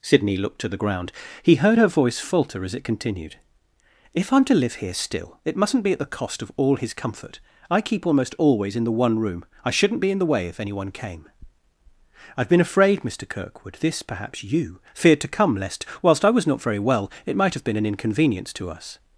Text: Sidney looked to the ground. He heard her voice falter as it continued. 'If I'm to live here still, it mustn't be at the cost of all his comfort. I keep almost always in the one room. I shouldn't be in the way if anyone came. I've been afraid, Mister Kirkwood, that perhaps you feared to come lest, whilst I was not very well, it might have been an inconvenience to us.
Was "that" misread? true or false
true